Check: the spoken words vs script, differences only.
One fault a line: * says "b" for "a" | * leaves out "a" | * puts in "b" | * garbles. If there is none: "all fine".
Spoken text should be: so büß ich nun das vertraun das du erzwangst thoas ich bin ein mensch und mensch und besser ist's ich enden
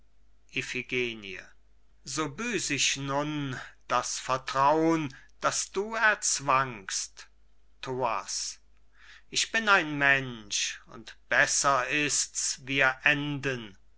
* leaves out "mensch und"
* says "wir" for "ich"